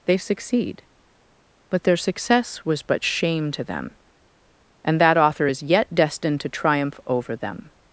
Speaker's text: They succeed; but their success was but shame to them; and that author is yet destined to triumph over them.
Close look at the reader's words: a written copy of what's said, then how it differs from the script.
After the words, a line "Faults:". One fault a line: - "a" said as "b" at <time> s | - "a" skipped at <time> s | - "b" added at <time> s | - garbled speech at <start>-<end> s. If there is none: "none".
They succeed; but their success was but shame to them; and that author is yet destined to triumph over them.
Faults:
none